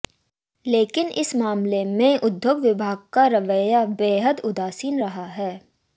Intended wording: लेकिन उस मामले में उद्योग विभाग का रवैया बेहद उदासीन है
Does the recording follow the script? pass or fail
fail